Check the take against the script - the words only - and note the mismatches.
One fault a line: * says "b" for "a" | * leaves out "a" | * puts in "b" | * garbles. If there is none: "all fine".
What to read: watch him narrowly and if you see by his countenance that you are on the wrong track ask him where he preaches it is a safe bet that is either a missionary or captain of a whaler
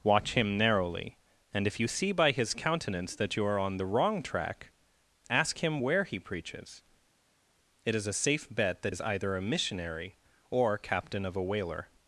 all fine